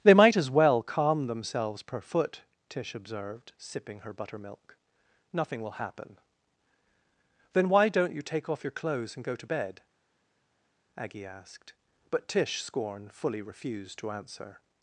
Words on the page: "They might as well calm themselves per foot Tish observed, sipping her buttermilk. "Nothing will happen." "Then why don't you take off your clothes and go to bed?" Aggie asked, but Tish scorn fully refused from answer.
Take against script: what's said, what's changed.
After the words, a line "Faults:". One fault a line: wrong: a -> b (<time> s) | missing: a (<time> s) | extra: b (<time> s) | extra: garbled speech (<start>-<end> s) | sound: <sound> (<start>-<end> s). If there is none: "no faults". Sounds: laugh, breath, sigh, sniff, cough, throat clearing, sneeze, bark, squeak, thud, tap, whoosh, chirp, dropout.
"They might as well calm themselves per foot Tish observed, sipping her buttermilk. "Nothing will happen." "Then why don't you take off your clothes and go to bed?" Aggie asked, but Tish scorn fully refused to answer.
Faults:
wrong: from -> to (14.0 s)